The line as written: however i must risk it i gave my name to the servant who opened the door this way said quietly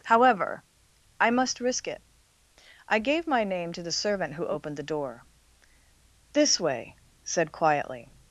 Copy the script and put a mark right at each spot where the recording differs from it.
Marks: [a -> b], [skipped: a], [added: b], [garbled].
however i must risk it i gave my name to the servant who opened the door this way said quietly